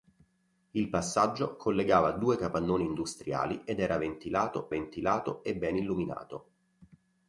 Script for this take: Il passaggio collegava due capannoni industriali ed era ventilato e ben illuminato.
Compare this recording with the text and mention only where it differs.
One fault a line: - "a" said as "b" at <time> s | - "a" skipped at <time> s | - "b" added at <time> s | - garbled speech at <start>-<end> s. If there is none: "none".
- "ventilato" added at 4.7 s